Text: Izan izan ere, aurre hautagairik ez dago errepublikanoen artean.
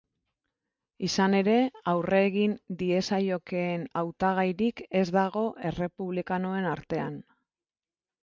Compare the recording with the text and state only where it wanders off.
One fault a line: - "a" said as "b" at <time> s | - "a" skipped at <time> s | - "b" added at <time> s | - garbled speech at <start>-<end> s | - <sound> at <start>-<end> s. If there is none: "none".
- "izan" skipped at 1.4 s
- "egin diezaiokeen" added at 2.3 s